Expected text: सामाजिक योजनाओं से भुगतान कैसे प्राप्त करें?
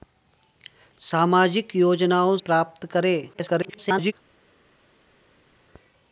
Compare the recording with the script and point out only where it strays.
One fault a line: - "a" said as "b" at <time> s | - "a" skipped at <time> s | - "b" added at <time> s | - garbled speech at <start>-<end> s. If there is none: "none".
- "से भुगतान कैसे" skipped at 2.4 s
- garbled speech at 3.3-4.1 s